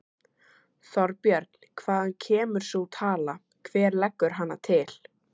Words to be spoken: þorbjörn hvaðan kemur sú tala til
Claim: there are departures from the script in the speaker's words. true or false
true